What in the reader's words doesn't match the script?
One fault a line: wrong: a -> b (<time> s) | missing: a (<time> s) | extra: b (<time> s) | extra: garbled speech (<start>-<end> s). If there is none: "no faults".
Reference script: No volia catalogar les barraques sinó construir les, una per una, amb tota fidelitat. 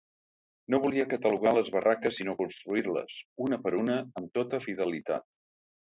no faults